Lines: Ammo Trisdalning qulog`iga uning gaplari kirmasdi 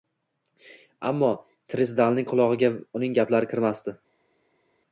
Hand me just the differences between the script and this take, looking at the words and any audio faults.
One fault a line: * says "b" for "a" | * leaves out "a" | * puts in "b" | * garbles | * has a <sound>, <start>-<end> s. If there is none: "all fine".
all fine